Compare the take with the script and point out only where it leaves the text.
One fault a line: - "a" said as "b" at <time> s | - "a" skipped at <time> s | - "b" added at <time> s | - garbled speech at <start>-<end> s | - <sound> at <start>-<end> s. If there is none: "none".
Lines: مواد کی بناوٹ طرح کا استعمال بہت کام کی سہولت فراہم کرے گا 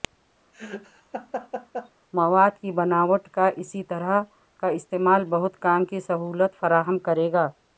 - laugh at 0.5-1.9 s
- "کا اسی" added at 3.3 s